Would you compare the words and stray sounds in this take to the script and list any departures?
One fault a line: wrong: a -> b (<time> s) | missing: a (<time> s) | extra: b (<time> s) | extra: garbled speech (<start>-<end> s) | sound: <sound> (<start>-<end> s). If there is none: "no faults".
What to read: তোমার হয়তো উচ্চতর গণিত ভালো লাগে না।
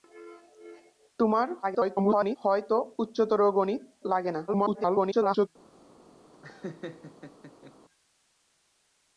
extra: garbled speech (1.6-2.4 s)
missing: ভালো (3.8 s)
extra: garbled speech (4.5-5.5 s)
sound: laugh (6.3-7.7 s)